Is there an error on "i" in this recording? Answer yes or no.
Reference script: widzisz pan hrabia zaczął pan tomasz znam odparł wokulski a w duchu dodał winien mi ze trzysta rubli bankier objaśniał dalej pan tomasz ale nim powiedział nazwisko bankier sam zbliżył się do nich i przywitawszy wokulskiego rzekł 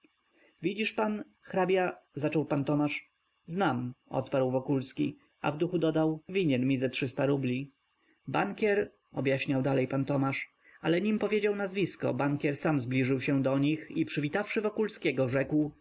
no